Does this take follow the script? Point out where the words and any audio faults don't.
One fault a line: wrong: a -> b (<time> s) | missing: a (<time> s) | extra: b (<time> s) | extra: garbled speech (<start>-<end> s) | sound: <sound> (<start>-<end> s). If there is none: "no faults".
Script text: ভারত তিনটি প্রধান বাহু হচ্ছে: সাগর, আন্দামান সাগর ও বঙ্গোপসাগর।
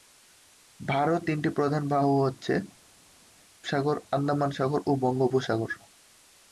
no faults